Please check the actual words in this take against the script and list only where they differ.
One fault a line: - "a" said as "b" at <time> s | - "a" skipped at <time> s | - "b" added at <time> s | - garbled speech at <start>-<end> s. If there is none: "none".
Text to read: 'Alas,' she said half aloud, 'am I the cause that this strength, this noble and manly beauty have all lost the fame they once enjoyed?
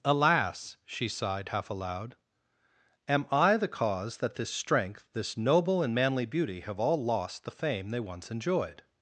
- "said" said as "sighed" at 1.1 s